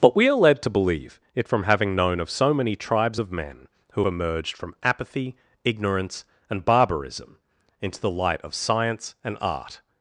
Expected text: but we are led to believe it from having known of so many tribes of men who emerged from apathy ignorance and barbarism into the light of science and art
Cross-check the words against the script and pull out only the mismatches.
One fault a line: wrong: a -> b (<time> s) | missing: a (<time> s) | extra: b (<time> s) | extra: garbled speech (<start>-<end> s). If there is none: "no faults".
no faults